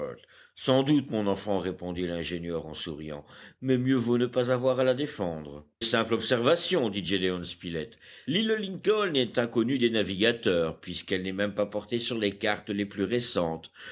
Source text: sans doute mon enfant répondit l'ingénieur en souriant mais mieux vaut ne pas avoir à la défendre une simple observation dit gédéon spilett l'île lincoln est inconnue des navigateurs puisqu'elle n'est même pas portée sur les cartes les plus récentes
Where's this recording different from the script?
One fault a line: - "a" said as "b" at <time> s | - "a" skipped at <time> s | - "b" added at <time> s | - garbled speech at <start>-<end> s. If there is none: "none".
- "une" skipped at 5.7 s